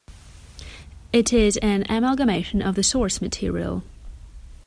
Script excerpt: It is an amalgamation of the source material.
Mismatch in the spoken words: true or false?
false